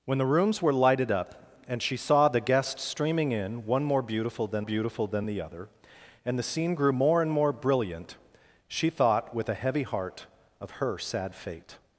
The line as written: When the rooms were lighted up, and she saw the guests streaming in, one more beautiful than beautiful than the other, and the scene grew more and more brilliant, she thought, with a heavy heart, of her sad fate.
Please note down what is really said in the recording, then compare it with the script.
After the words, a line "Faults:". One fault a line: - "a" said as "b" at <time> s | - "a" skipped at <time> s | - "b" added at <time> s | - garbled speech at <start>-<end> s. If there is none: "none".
When the rooms were lighted up, and she saw the guests streaming in, one more beautiful than beautiful than the other, and the scene grew more and more brilliant, she thought, with a heavy heart, of her sad fate.
Faults:
none